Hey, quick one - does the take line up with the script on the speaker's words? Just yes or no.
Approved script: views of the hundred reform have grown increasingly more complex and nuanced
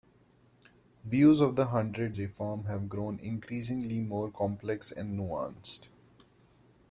yes